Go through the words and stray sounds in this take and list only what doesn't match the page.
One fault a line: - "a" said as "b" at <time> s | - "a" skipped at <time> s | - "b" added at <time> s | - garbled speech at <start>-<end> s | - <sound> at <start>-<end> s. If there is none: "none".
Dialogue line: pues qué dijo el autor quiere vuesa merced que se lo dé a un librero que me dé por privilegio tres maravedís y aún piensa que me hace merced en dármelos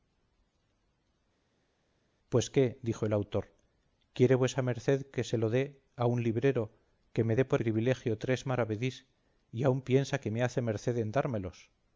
none